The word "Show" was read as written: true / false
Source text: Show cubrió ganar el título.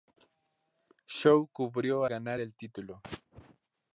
true